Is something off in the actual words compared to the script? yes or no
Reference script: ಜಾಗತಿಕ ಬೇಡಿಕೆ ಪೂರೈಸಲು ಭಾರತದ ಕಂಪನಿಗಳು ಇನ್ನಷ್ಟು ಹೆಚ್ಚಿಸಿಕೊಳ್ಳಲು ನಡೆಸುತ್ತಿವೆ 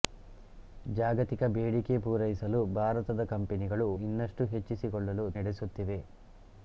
no